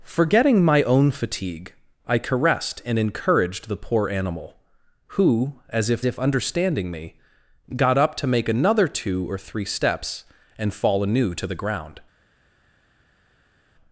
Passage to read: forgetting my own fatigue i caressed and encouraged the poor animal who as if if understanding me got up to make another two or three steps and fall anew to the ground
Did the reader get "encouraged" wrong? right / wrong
right